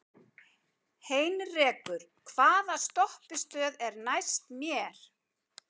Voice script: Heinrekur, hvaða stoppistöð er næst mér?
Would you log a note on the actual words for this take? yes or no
no